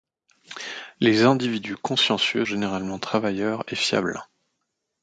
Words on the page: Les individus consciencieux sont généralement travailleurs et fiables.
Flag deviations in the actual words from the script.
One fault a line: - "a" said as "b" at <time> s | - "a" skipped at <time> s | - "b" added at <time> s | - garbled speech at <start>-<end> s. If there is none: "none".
- "sont" skipped at 2.5 s